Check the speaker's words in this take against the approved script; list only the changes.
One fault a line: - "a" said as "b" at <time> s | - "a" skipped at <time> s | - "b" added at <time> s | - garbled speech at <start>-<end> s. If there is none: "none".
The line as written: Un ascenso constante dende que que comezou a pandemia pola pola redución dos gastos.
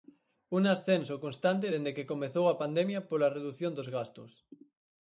- "que" skipped at 2.1 s
- "pola" skipped at 3.3 s